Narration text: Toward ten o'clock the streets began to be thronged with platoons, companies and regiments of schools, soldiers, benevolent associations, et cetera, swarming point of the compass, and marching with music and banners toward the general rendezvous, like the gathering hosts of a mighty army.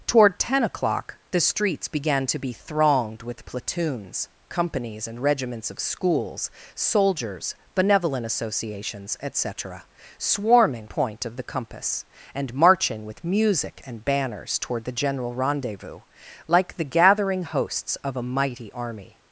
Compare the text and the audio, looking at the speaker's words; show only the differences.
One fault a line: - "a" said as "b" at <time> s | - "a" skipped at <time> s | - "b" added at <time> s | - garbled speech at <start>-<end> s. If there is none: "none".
none